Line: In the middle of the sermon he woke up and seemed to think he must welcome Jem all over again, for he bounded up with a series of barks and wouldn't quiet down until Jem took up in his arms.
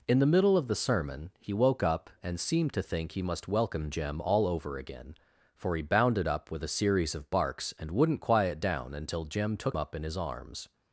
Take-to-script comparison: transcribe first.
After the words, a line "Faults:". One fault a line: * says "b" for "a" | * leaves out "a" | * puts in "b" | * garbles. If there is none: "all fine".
In the middle of the sermon he woke up and seemed to think he must welcome Jem all over again, for he bounded up with a series of barks and wouldn't quiet down until Jem took up in his arms.
Faults:
all fine